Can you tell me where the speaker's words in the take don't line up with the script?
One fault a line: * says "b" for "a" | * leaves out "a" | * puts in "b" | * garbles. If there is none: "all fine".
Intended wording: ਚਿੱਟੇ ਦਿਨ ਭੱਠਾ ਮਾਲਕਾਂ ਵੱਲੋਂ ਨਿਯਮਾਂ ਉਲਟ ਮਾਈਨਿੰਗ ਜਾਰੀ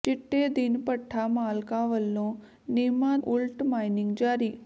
all fine